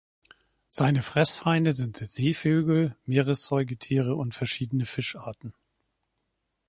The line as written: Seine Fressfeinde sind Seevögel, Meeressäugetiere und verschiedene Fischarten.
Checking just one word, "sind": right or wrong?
right